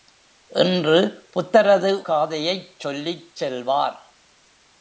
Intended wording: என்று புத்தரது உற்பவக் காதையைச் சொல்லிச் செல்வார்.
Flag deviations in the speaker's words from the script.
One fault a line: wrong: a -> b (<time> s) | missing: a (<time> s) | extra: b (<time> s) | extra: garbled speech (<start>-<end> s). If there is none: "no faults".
missing: உற்பவக் (1.9 s)